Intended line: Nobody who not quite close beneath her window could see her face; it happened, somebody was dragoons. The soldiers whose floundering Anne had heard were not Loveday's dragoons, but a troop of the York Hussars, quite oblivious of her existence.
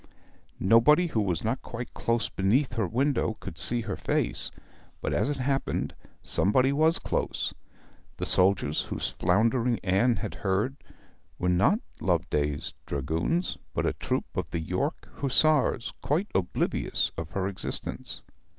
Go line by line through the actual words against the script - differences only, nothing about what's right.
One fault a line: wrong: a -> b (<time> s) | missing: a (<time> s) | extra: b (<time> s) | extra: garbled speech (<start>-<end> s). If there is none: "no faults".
extra: was (1.2 s)
extra: but as (5.0 s)
wrong: dragoons -> close (7.0 s)